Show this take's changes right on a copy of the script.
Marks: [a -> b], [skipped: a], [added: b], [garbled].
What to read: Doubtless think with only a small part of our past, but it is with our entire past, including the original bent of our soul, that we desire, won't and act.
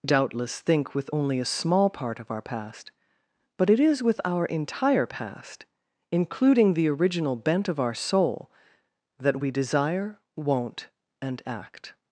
Doubtless think with only a small part of our past, but it is with our entire past, including the original bent of our soul, that we desire, won't and act.